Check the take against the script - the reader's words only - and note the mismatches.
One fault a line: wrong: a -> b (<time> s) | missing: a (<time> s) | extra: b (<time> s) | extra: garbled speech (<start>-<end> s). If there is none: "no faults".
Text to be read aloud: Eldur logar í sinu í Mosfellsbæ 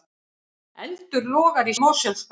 missing: sinu (1.8 s)